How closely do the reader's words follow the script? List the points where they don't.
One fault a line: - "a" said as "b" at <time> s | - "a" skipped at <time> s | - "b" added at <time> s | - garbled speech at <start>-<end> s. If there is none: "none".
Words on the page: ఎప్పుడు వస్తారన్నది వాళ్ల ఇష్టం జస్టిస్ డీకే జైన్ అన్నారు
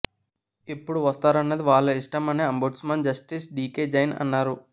- "అని అంబుడ్స్మన్" added at 2.3 s